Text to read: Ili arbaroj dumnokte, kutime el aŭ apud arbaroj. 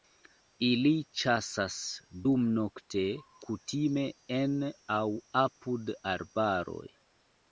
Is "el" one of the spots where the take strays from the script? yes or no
yes